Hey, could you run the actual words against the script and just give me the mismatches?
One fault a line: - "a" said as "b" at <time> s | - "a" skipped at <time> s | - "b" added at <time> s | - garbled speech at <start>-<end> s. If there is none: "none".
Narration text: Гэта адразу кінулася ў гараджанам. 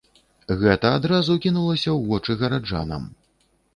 - "вочы" added at 2.1 s